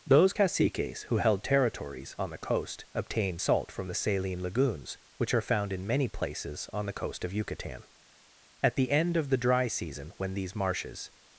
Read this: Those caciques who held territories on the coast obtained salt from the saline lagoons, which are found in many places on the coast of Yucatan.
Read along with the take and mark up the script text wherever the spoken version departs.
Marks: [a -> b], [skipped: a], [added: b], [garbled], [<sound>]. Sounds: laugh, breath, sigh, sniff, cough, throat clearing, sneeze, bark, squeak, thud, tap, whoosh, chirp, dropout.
Those caciques who held territories on the coast obtained salt from the saline lagoons, which are found in many places on the coast of Yucatan. [added: At the end of the dry season when these marshes]